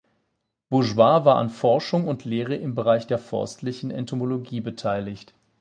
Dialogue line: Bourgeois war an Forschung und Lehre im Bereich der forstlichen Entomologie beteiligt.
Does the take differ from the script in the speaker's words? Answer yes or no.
no